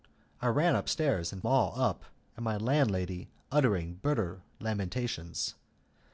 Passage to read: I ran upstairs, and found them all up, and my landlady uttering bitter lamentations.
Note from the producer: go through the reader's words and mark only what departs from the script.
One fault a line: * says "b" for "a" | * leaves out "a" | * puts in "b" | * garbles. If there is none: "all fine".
* leaves out "found them"